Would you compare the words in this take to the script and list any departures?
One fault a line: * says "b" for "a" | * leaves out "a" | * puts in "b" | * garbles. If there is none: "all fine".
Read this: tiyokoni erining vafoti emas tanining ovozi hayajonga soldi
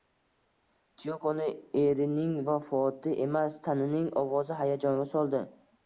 all fine